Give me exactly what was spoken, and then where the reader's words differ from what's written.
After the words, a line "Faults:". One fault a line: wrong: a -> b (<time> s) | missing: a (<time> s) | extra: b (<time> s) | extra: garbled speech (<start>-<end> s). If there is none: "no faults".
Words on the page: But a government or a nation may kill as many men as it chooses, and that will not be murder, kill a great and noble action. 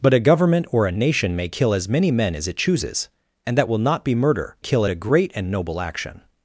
But a government or a nation may kill as many men as it chooses, and that will not be murder, kill a great and noble action.
Faults:
no faults